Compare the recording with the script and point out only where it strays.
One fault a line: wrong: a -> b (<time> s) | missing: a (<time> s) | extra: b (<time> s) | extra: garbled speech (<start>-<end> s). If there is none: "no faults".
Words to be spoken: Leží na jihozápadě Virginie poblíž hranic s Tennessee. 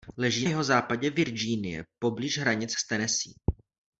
missing: na (0.5 s)